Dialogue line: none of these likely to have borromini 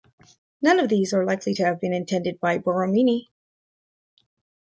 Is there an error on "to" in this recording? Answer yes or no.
no